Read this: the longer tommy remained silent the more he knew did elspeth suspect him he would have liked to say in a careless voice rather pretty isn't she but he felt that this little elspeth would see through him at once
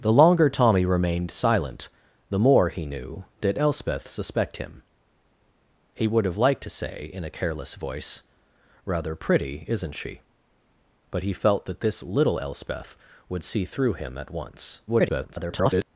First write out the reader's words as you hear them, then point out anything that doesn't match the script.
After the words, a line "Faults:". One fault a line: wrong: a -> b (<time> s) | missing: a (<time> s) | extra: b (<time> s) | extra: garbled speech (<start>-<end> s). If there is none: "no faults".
the longer tommy remained silent the more he knew did elspeth suspect him he would have liked to say in a careless voice rather pretty isn't she but he felt that this little elspeth would see through him at once [garbled]
Faults:
extra: garbled speech (14.9-15.9 s)